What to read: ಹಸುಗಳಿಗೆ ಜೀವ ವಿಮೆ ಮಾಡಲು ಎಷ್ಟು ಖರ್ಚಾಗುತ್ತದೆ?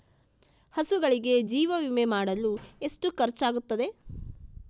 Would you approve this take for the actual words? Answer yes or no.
yes